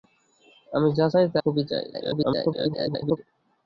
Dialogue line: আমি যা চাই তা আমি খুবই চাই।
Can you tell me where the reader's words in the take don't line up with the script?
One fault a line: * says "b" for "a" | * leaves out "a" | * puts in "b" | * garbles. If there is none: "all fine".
* leaves out "আমি"
* garbles